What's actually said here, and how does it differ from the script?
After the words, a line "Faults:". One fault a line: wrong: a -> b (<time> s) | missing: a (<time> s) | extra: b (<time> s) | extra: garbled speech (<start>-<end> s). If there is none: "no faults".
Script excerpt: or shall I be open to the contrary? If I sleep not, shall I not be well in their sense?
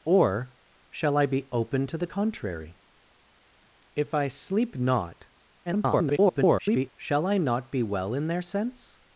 or shall I be open to the contrary? If I sleep not, [garbled] shall I not be well in their sense?
Faults:
extra: garbled speech (5.7-6.9 s)